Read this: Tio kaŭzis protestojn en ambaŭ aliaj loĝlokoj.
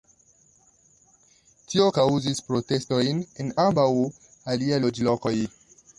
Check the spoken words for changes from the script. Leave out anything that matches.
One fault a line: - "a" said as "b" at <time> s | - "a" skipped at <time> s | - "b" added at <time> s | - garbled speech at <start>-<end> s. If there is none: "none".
none